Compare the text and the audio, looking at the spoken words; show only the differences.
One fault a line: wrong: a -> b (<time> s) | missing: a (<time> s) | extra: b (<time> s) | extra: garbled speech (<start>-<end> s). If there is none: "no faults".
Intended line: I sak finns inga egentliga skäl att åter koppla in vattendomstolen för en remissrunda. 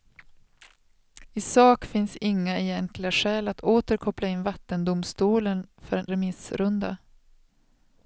no faults